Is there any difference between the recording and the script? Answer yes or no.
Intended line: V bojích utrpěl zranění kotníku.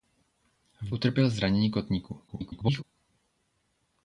yes